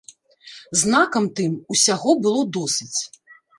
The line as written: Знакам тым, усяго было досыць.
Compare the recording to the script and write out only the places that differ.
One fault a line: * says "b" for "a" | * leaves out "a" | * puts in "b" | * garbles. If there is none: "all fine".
all fine